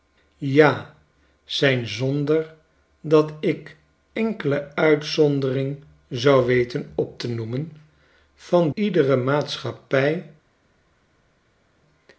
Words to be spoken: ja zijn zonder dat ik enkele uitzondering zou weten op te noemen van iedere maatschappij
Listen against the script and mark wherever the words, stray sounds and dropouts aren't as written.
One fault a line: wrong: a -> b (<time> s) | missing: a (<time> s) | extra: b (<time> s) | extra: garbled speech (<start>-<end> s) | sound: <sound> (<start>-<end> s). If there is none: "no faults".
no faults